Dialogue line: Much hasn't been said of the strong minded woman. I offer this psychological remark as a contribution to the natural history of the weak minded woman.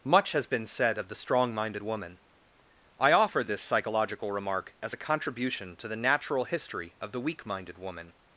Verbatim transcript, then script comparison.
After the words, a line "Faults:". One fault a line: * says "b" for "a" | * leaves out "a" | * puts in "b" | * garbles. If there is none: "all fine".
Much has been said of the strong minded woman. I offer this psychological remark as a contribution to the natural history of the weak minded woman.
Faults:
* says "has" for "hasn't"